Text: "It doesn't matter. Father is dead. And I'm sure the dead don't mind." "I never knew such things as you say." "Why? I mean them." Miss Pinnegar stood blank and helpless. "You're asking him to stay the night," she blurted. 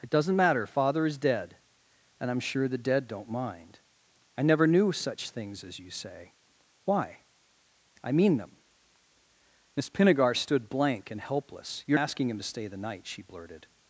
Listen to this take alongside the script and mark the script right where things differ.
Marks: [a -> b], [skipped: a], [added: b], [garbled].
"It doesn't matter. Father is dead. And I'm sure the dead don't mind." "I never knew such things as you say." "Why? I mean them." Miss Pinnegar stood blank and helpless. "You're asking him to stay the night," she blurted.